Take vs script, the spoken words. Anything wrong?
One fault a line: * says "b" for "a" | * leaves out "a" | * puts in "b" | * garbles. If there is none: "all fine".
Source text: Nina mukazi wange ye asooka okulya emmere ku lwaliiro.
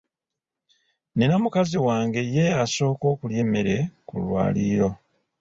all fine